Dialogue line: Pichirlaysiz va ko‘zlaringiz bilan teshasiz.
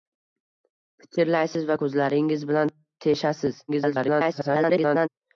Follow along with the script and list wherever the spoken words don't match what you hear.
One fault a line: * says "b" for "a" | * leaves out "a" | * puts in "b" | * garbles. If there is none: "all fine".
* garbles